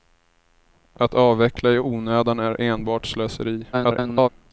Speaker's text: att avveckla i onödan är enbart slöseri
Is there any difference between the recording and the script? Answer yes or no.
yes